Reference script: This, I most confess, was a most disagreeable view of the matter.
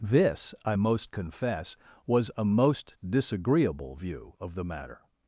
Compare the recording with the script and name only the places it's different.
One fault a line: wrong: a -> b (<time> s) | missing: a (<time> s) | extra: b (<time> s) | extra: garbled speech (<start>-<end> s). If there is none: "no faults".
no faults